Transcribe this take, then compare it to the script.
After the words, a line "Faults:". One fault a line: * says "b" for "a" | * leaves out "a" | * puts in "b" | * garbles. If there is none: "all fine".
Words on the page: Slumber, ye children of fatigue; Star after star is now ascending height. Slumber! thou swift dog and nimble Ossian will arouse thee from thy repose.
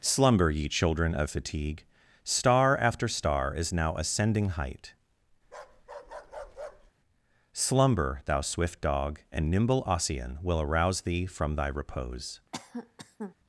Slumber, ye children of fatigue; Star after star is now ascending height. Slumber! thou swift dog and nimble Ossian will arouse thee from thy repose.
Faults:
all fine